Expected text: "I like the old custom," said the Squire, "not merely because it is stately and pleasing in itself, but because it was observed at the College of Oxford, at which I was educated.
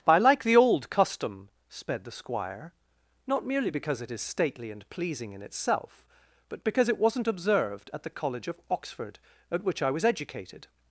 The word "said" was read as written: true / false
false